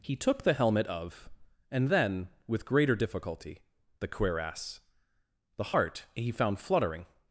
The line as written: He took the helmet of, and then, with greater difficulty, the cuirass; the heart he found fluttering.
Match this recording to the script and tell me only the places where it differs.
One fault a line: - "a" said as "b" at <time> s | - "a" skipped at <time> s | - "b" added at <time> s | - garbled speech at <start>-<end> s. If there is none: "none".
none